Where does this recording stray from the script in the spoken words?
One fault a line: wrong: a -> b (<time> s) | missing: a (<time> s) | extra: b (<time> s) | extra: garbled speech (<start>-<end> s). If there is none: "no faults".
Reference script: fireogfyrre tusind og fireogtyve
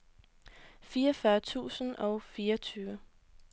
no faults